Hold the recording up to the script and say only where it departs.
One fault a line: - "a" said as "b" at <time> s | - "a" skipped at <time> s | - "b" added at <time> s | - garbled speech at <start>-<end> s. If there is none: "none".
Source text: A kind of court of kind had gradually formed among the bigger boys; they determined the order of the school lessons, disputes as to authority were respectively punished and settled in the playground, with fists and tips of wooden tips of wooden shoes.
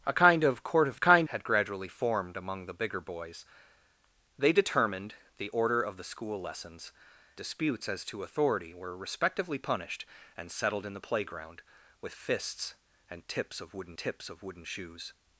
none